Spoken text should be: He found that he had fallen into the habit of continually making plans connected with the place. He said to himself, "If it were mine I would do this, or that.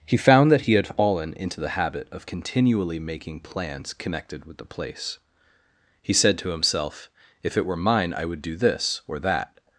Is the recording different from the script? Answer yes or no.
no